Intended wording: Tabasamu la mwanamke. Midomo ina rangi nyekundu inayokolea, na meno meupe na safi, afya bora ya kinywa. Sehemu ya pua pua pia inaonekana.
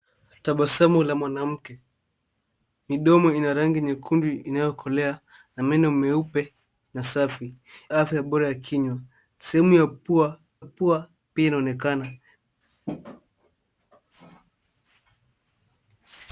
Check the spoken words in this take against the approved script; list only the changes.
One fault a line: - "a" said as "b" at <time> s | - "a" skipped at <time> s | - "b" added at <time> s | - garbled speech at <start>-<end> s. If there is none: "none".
none